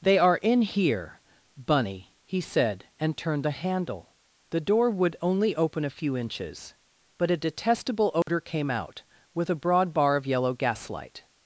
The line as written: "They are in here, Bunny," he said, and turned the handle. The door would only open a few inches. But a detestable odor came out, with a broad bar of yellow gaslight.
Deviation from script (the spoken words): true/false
false